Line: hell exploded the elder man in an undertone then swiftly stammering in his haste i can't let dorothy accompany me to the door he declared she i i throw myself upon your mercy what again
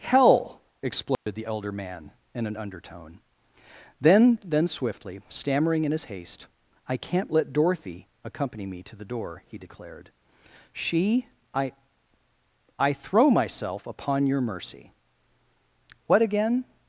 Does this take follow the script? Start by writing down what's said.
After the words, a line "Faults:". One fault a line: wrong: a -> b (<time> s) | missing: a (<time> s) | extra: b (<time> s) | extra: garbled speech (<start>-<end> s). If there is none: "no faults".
hell exploded the elder man in an undertone then then swiftly stammering in his haste i can't let dorothy accompany me to the door he declared she i i throw myself upon your mercy what again
Faults:
extra: then (4.4 s)